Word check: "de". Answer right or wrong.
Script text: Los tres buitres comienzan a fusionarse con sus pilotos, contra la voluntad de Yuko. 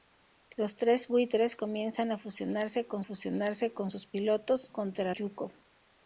wrong